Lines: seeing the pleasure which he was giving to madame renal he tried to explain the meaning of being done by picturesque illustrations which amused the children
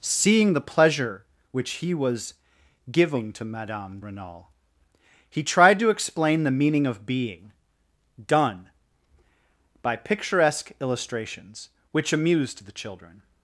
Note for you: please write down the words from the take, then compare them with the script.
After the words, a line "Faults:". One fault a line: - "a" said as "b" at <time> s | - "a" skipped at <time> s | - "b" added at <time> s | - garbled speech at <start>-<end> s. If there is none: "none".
seeing the pleasure which he was giving to madame renal he tried to explain the meaning of being done by picturesque illustrations which amused the children
Faults:
none